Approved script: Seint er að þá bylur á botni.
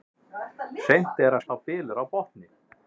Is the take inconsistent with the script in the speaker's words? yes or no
no